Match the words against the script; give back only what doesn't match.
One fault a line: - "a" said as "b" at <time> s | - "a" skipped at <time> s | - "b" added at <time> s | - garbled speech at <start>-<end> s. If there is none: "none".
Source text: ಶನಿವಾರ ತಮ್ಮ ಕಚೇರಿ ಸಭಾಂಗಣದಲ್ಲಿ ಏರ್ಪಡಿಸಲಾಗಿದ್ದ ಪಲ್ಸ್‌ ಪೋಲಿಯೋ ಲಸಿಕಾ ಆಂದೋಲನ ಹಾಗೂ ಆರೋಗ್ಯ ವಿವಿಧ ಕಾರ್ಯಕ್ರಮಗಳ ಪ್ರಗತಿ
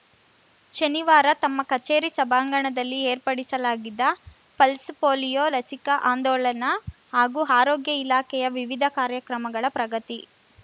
- "ಇಲಾಖೆಯ" added at 8.0 s